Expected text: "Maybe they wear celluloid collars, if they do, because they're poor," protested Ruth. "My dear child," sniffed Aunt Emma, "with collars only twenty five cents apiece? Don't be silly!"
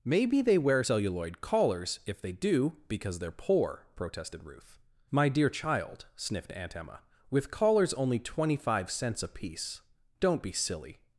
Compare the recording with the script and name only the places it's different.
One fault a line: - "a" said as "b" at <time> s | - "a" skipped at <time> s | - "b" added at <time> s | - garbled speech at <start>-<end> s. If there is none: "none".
none